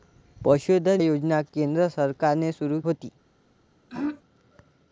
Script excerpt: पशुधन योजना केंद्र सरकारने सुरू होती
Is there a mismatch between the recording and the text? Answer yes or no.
no